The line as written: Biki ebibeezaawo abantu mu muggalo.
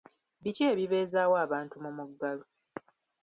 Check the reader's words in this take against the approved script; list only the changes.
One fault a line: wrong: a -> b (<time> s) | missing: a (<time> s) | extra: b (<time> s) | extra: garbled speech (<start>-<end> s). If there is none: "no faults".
no faults